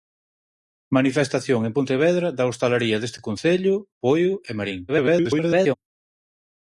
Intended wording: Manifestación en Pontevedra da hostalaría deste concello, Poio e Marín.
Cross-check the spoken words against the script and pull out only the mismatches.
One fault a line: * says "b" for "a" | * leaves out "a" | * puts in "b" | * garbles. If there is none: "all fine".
* garbles